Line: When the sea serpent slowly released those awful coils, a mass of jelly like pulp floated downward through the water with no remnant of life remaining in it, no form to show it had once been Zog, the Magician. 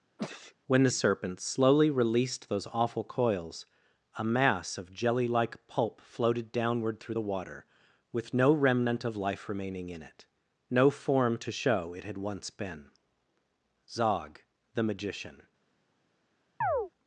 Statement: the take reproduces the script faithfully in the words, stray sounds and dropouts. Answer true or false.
false